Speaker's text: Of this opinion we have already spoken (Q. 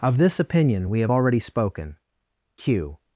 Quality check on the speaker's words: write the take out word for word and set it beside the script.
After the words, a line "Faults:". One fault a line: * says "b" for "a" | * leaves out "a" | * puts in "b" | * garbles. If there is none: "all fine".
Of this opinion we have already spoken (Q.
Faults:
all fine